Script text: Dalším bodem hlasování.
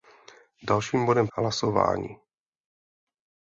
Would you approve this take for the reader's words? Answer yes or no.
yes